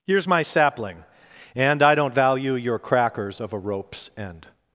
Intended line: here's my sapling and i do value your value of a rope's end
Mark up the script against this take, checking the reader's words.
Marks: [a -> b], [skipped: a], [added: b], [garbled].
here's my sapling and i [do -> don't] value your [value -> crackers] of a rope's end